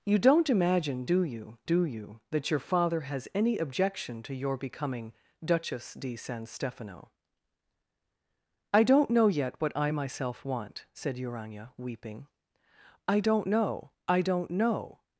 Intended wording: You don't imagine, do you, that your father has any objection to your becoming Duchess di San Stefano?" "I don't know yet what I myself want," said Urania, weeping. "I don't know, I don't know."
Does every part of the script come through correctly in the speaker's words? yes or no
no